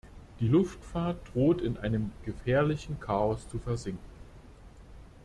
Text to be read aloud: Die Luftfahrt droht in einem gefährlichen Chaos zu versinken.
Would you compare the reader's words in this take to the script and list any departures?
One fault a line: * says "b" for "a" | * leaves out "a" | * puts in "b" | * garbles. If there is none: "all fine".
all fine